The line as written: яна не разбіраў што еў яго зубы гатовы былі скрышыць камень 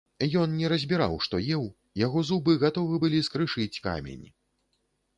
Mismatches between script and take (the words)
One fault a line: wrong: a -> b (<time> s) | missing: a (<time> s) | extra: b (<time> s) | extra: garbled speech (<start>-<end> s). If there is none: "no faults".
wrong: яна -> ён (0.4 s)